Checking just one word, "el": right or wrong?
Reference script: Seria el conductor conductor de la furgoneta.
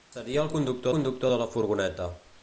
right